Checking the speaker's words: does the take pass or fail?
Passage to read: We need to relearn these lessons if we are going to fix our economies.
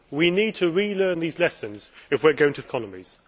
fail